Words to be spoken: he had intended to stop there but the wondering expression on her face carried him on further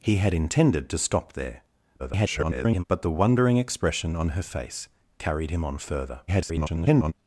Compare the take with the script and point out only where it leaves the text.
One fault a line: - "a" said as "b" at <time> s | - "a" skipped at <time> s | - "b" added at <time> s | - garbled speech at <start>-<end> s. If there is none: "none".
- garbled speech at 2.0-2.8 s
- garbled speech at 6.3-7.1 s